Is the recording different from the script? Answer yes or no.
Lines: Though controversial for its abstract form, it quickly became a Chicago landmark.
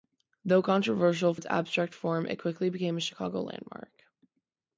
yes